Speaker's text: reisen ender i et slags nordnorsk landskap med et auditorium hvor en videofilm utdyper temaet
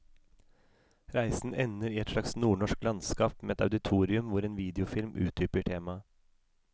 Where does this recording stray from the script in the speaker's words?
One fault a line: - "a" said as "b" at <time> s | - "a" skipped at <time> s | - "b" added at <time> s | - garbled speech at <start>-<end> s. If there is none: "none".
none